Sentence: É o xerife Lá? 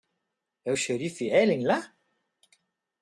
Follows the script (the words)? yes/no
no